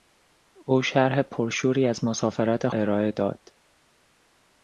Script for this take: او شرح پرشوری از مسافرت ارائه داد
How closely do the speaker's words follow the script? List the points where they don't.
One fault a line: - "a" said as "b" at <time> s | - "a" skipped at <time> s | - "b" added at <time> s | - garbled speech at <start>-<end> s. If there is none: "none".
none